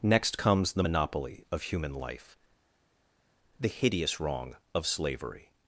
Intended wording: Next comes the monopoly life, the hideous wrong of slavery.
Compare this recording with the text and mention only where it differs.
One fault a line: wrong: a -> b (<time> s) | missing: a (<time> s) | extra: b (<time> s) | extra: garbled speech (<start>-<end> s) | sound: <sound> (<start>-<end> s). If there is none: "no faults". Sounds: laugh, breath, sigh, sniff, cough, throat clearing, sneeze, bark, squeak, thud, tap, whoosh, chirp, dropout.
extra: of human (1.5 s)